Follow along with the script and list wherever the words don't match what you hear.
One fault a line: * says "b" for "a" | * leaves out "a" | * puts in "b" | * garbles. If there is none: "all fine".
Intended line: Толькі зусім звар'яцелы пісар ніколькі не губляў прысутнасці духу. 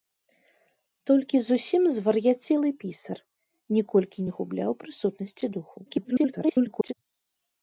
* garbles